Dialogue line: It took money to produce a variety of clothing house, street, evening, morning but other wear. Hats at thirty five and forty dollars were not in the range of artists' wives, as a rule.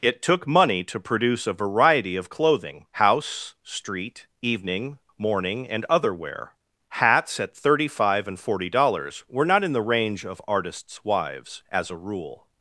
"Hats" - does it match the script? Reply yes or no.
yes